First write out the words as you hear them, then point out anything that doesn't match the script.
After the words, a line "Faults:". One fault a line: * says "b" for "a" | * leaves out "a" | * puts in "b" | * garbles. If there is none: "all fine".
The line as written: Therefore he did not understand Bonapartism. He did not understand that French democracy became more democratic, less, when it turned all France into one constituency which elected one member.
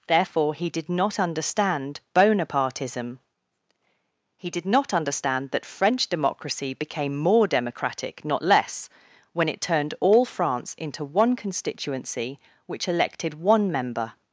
Therefore he did not understand Bonapartism. He did not understand that French democracy became more democratic, not less, when it turned all France into one constituency which elected one member.
Faults:
* puts in "not"